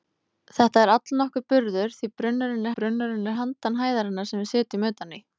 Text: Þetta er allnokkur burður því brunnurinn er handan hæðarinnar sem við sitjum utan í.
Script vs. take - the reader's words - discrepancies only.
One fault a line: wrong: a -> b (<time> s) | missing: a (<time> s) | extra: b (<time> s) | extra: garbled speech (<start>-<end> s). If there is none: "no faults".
extra: brunnurinn (2.8 s)